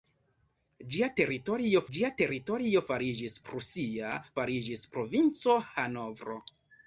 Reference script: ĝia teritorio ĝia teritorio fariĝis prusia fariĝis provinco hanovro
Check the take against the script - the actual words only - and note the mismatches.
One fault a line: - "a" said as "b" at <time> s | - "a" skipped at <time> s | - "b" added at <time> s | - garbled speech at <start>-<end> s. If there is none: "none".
none